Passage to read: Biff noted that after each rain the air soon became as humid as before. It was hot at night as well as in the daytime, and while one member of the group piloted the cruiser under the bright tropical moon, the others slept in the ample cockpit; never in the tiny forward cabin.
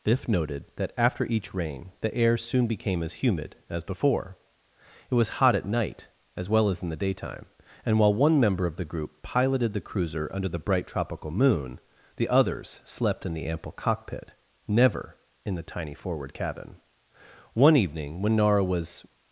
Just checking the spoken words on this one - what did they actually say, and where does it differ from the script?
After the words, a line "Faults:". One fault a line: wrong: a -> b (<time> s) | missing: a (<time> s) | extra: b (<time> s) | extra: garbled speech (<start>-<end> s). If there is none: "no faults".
Biff noted that after each rain the air soon became as humid as before. It was hot at night as well as in the daytime, and while one member of the group piloted the cruiser under the bright tropical moon, the others slept in the ample cockpit; never in the tiny forward cabin. One evening when Nara was
Faults:
extra: One evening when Nara was (17.5 s)